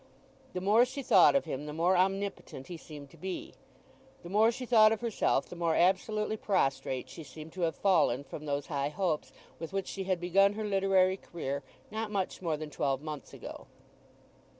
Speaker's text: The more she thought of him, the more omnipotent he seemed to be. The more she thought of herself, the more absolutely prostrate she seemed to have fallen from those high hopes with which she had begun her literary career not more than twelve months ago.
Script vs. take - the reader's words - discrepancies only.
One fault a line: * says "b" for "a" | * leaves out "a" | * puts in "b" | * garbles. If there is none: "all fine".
* puts in "much"